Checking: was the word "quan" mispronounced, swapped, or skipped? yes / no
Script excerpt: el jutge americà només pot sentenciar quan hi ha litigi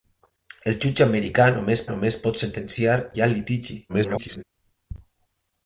yes